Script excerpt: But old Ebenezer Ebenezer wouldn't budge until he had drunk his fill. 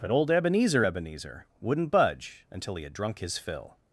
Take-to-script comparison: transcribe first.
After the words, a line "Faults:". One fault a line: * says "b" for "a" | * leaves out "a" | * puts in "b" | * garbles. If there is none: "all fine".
But old Ebenezer Ebenezer wouldn't budge until he had drunk his fill.
Faults:
all fine